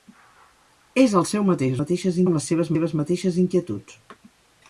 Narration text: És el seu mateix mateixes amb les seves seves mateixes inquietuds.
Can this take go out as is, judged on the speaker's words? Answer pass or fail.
pass